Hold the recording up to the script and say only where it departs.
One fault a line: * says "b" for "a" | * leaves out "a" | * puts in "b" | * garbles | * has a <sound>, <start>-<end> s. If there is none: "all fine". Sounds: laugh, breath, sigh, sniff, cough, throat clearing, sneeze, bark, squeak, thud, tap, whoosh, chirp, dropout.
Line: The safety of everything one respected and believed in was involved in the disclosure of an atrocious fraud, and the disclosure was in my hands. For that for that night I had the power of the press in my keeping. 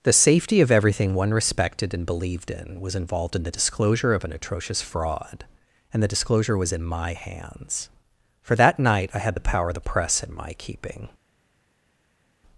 * leaves out "for that"